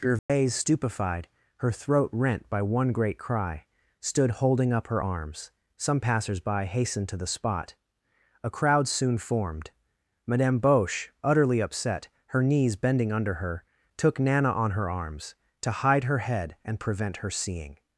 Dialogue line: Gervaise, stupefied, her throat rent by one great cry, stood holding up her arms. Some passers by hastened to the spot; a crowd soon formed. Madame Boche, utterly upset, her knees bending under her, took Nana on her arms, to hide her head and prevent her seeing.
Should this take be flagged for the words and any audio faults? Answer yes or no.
yes